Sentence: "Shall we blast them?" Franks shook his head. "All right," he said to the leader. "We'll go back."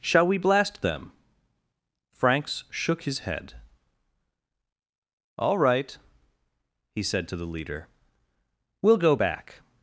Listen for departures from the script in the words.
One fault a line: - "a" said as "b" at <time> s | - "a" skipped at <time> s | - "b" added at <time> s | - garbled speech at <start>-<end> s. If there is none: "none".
none